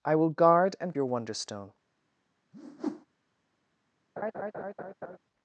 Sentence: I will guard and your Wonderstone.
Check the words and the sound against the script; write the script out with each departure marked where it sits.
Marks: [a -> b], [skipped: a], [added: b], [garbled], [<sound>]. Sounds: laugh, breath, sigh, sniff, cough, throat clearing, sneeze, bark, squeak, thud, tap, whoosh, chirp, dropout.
I will guard and your Wonderstone. [whoosh] [laugh]